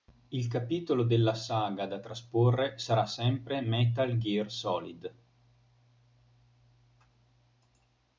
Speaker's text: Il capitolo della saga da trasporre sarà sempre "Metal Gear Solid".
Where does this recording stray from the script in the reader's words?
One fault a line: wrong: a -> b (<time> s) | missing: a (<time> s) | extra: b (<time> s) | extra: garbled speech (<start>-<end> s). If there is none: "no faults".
no faults